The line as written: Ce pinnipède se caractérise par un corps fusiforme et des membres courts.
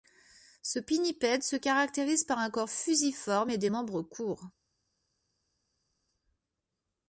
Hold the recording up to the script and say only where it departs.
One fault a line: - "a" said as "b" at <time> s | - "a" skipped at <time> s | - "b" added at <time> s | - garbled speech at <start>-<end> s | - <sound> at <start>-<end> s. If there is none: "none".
none